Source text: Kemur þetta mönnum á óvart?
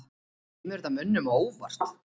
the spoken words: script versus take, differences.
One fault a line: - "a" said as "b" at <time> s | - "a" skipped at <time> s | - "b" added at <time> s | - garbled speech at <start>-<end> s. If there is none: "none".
none